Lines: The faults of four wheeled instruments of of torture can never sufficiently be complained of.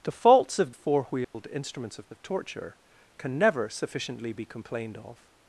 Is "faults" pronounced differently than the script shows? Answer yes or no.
no